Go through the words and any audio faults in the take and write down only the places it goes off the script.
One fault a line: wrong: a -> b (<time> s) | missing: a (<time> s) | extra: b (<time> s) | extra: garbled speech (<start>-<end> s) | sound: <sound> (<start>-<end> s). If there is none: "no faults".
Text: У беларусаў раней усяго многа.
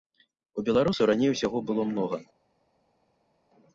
extra: было (1.7 s)